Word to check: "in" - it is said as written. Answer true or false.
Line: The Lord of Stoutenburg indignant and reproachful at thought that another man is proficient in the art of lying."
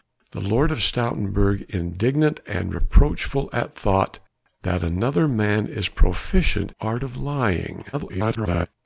false